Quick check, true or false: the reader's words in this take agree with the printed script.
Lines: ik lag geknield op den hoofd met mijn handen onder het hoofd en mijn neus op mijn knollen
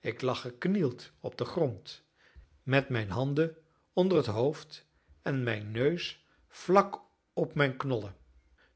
false